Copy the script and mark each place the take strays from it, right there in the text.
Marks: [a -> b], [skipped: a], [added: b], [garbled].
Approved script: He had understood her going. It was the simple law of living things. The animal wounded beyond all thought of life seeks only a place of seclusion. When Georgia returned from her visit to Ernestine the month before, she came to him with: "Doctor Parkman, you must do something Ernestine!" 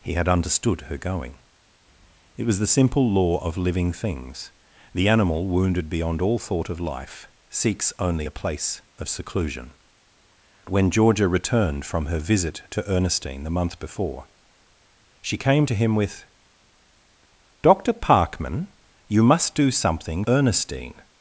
He had understood her going. It was the simple law of living things. The animal wounded beyond all thought of life seeks only a place of seclusion. When Georgia returned from her visit to Ernestine the month before, she came to him with: "Doctor Parkman, you must do something Ernestine!"